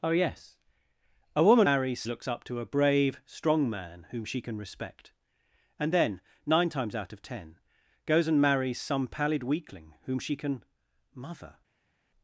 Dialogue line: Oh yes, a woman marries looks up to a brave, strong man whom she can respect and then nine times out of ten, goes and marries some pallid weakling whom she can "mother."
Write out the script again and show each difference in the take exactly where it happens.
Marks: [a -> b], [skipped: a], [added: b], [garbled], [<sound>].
Oh yes, a woman marries looks up to a brave, strong man whom she can respect and then nine times out of ten, goes and marries some pallid weakling whom she can "mother."